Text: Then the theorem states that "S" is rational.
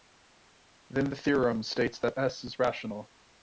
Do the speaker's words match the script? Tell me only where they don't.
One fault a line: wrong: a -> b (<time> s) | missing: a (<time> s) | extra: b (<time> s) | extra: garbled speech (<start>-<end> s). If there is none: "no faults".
no faults